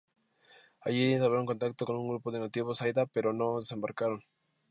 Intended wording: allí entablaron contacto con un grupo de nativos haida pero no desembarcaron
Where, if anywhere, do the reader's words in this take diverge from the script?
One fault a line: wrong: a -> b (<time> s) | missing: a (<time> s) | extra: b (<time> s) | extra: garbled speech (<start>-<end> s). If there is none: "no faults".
no faults